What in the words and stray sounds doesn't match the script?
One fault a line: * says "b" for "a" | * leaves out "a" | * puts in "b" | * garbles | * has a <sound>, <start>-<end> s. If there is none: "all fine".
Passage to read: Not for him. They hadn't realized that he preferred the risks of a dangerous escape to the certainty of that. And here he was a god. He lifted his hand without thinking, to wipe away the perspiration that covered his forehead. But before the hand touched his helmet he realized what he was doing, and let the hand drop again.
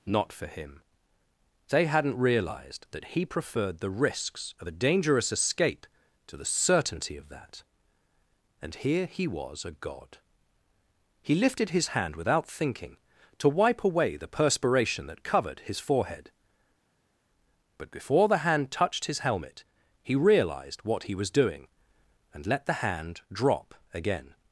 all fine